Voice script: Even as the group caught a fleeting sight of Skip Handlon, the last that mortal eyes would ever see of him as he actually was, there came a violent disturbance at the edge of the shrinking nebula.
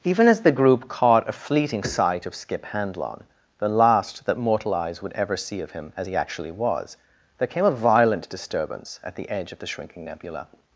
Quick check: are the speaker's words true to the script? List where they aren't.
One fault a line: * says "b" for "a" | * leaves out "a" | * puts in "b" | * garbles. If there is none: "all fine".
all fine